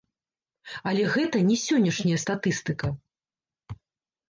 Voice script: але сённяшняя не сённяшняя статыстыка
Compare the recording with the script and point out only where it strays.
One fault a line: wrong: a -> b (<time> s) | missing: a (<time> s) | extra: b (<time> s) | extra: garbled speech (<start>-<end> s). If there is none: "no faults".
wrong: сённяшняя -> гэта (1.1 s)